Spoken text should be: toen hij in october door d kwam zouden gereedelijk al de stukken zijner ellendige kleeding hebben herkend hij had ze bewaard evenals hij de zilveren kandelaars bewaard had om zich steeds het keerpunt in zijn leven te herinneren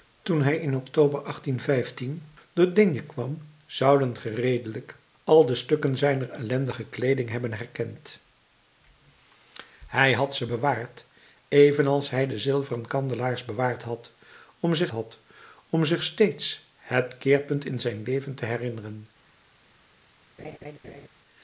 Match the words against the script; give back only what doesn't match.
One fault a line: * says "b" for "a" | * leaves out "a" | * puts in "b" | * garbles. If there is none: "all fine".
* puts in "had om zich"